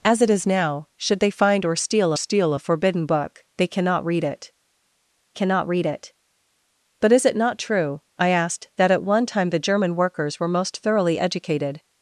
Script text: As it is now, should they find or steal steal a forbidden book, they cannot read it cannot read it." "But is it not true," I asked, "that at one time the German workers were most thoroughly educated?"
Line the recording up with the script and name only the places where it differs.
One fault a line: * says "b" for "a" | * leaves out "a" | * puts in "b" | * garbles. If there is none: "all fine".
all fine